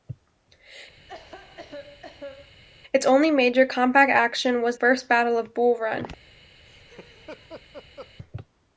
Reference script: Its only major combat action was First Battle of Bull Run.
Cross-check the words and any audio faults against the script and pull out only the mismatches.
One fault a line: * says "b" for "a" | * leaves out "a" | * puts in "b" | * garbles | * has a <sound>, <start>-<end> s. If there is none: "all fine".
* has a cough, 1.1-2.6 s
* has a laugh, 6.6-8.1 s